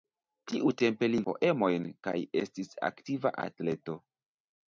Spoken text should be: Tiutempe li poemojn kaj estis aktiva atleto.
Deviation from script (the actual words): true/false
false